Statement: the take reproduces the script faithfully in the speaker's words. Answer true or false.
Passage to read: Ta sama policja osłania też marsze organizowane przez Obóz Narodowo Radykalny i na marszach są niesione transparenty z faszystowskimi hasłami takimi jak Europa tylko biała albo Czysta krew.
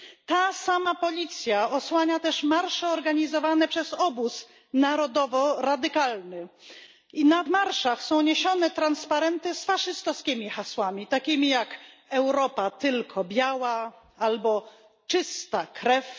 true